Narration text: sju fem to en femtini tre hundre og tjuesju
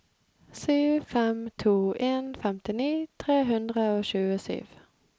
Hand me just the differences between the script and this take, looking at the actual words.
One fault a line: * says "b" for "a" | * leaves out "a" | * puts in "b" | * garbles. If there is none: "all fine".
all fine